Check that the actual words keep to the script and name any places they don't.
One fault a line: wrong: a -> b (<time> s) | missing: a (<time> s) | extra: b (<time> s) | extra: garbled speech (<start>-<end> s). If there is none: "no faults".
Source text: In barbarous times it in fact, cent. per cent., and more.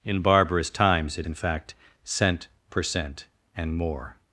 no faults